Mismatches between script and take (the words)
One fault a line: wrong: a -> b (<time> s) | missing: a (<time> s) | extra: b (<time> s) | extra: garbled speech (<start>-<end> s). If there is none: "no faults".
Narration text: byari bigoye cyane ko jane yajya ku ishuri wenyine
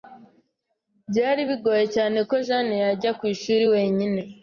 no faults